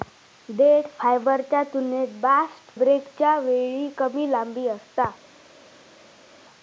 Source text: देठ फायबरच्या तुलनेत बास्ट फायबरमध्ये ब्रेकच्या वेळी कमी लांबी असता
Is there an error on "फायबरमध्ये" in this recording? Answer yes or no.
yes